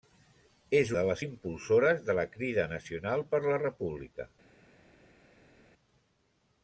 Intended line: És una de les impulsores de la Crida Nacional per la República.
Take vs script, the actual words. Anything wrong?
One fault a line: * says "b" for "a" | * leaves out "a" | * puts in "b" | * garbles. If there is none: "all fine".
* leaves out "una"